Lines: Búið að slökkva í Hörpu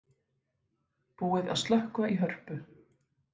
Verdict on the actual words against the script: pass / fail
pass